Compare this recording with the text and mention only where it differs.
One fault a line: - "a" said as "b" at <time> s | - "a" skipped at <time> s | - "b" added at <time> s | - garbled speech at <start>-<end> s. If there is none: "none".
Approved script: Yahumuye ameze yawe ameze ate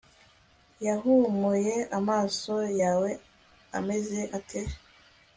- "ameze" said as "amaso" at 2.0 s